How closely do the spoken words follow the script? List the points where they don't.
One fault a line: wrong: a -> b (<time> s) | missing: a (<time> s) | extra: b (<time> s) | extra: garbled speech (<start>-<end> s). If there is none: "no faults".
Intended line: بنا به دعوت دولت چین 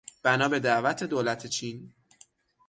no faults